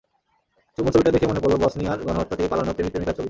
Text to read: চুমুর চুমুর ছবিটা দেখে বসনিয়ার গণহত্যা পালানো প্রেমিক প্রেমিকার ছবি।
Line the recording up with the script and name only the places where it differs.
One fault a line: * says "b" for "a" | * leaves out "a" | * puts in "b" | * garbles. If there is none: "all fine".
* leaves out "চুমুর"
* puts in "মনে পড়ল"
* puts in "থেকে"